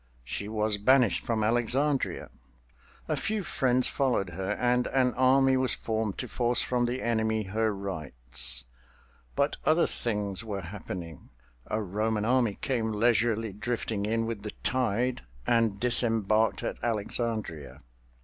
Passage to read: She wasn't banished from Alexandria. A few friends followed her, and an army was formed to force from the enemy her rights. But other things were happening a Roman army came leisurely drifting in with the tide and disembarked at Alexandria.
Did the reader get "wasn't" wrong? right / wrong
wrong